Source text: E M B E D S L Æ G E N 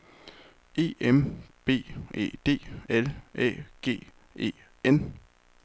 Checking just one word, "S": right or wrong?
wrong